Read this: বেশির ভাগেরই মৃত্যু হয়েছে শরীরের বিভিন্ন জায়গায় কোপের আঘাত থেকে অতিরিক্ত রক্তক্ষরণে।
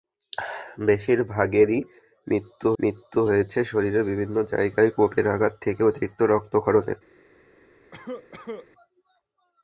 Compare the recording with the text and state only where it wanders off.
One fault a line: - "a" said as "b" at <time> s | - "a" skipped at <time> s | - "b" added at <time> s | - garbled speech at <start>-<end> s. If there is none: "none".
- "মৃত্যু" added at 2.8 s